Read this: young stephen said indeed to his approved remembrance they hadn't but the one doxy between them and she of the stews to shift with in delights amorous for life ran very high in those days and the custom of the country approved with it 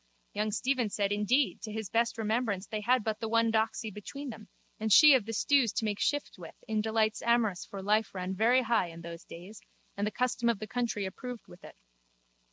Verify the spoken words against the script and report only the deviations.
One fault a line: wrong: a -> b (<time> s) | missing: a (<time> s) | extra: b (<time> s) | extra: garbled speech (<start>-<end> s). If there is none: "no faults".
wrong: approved -> best (1.9 s)
wrong: hadn't -> had (2.8 s)
extra: make (5.8 s)